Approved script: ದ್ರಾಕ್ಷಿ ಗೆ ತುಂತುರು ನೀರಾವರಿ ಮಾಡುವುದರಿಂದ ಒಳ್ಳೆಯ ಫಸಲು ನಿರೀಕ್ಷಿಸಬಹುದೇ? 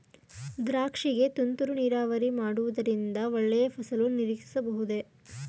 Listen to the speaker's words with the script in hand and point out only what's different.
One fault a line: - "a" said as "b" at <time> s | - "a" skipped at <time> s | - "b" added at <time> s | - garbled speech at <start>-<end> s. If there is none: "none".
none